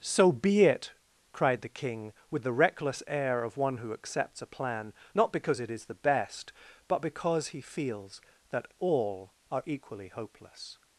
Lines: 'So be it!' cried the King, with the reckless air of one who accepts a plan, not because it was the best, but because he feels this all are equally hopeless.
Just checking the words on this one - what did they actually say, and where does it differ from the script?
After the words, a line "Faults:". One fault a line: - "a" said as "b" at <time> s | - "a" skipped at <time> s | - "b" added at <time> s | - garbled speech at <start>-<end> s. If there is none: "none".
'So be it!' cried the King, with the reckless air of one who accepts a plan, not because it is the best, but because he feels that all are equally hopeless.
Faults:
- "was" said as "is" at 5.7 s
- "this" said as "that" at 8.5 s